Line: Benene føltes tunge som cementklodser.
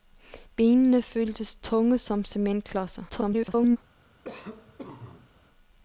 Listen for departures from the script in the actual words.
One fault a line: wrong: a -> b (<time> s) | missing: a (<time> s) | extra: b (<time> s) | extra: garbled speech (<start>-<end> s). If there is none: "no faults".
extra: garbled speech (3.1-3.8 s)